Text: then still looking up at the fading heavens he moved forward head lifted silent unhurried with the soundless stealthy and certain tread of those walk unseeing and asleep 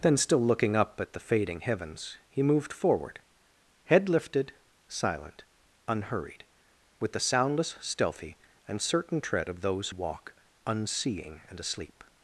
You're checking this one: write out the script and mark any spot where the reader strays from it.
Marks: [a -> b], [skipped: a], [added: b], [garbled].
then still looking up at the fading heavens he moved forward head lifted silent unhurried with the soundless stealthy and certain tread of those walk unseeing and asleep